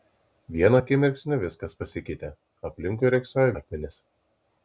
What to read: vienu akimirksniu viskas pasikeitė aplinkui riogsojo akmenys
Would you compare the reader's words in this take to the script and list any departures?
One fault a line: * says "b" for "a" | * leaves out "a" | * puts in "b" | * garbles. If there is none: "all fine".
all fine